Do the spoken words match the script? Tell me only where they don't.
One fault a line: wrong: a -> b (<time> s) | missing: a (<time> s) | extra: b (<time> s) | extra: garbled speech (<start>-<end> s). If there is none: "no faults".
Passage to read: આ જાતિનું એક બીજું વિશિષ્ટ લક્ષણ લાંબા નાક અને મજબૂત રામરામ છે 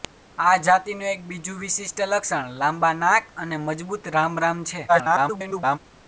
extra: garbled speech (4.9-5.8 s)